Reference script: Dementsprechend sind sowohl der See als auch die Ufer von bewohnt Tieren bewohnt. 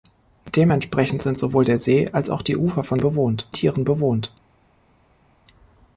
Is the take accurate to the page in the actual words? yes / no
yes